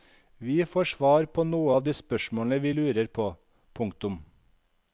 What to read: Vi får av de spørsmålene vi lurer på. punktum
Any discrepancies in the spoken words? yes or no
yes